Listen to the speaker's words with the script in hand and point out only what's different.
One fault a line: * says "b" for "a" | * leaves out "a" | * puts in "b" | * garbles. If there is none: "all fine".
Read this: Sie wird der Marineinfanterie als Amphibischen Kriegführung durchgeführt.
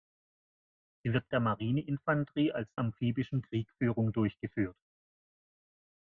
all fine